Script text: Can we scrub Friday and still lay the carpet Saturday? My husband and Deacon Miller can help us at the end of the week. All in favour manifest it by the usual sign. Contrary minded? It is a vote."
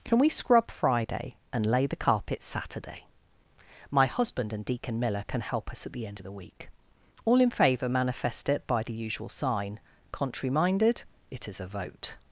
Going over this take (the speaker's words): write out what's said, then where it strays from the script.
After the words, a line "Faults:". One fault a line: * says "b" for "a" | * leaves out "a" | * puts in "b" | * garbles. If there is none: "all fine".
Can we scrub Friday and lay the carpet Saturday? My husband and Deacon Miller can help us at the end of the week. All in favour manifest it by the usual sign. Contrary minded? It is a vote."
Faults:
* leaves out "still"